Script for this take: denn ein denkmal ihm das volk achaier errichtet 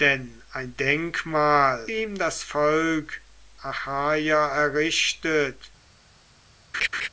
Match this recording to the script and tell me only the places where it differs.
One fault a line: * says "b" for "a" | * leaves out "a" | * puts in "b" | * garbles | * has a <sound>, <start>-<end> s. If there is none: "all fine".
* has a laugh, 6.7-7.1 s